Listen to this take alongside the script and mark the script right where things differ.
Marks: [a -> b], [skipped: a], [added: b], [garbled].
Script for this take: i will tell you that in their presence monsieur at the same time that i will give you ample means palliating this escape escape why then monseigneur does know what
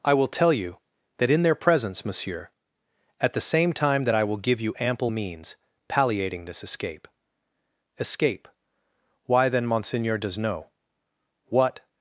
i will tell you that in their presence monsieur at the same time that i will give you ample means palliating this escape escape why then monseigneur does know what